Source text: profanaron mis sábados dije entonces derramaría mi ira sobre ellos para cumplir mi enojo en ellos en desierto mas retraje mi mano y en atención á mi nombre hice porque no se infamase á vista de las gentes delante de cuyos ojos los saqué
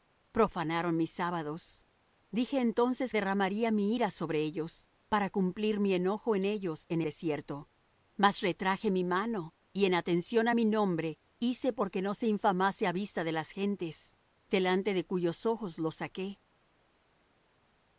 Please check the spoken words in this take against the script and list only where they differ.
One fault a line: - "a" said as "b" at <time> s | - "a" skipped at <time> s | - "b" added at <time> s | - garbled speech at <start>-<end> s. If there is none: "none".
none